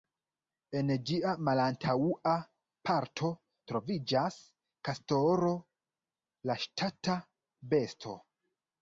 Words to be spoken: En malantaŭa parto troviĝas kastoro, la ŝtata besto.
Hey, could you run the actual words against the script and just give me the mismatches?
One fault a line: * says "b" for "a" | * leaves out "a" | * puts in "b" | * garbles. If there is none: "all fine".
* puts in "ĝia"